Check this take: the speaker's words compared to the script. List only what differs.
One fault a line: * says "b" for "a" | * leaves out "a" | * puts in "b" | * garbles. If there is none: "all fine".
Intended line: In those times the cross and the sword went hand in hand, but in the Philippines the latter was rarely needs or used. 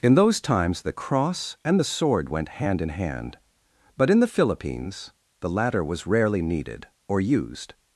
* says "needed" for "needs"